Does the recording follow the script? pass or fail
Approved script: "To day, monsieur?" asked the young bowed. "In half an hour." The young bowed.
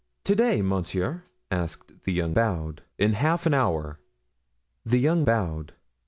pass